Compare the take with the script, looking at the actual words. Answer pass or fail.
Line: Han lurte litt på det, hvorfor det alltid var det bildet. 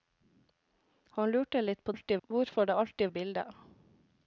fail